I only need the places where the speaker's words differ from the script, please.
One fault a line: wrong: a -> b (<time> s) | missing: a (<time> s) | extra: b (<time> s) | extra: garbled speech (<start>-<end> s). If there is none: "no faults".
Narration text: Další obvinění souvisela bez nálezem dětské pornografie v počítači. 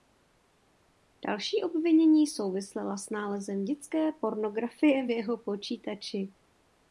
wrong: bez -> s (3.0 s)
extra: jeho (5.1 s)